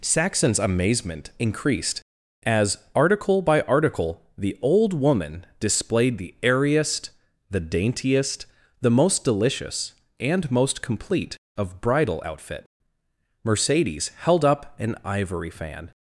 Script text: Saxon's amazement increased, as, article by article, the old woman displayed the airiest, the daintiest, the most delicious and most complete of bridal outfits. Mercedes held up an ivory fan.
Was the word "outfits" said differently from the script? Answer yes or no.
yes